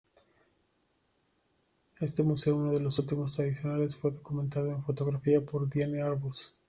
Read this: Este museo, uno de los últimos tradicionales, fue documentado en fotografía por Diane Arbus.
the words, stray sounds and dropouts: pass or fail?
pass